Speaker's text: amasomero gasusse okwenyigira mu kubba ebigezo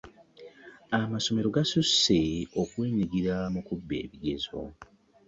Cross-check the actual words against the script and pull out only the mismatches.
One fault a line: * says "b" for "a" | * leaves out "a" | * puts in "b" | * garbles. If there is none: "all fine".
all fine